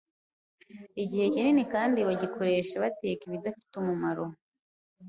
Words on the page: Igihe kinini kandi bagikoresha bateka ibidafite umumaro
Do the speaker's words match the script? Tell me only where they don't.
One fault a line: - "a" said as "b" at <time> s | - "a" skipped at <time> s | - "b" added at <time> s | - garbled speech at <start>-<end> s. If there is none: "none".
none